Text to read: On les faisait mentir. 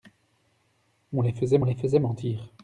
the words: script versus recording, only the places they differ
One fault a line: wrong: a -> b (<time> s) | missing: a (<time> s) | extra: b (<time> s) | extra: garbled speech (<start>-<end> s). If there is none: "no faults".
extra: les faisait (1.6 s)